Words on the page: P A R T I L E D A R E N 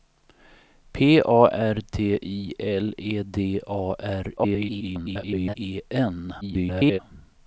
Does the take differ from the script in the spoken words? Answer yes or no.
yes